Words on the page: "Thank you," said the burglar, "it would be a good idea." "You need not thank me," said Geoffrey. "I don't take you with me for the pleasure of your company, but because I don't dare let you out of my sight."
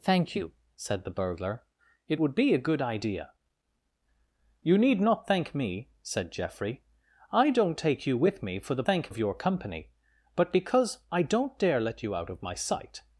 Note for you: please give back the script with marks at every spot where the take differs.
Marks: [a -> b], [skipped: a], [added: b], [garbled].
"Thank you," said the burglar, "it would be a good idea." "You need not thank me," said Geoffrey. "I don't take you with me for the [pleasure -> thank] of your company, but because I don't dare let you out of my sight."